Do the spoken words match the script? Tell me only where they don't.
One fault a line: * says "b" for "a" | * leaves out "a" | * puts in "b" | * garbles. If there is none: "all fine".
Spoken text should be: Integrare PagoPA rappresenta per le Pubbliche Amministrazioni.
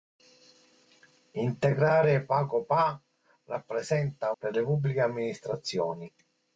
all fine